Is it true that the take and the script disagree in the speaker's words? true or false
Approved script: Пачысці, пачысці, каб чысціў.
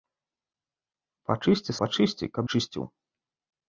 false